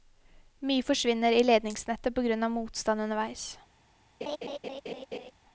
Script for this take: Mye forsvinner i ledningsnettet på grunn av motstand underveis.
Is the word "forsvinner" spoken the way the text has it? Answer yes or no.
yes